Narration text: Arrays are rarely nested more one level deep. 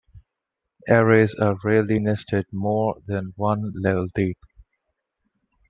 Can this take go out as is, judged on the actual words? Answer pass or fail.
fail